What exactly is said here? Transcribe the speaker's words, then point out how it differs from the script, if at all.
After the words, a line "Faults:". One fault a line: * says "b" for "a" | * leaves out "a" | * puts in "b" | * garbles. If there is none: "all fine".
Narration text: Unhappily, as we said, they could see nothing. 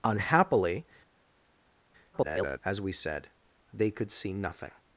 Unhappily, [garbled] as we said, they could see nothing.
Faults:
* garbles